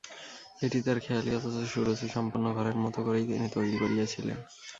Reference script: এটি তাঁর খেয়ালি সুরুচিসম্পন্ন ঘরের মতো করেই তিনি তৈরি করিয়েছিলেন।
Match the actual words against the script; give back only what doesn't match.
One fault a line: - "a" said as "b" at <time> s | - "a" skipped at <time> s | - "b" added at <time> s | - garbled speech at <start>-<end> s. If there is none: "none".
- "অথচ" added at 1.4 s